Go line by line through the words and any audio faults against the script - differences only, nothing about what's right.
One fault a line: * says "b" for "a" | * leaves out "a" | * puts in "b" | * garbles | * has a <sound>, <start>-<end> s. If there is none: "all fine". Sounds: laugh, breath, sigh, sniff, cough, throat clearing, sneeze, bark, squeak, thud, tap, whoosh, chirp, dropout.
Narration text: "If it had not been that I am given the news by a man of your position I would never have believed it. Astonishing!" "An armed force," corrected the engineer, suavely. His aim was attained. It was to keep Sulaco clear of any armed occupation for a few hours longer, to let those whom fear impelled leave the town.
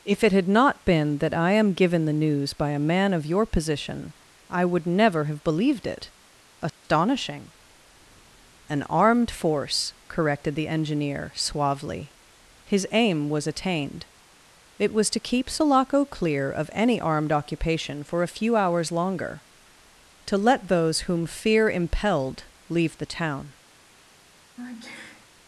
* has a dropout, 6.7-6.8 s
* has a sneeze, 24.6-25.3 s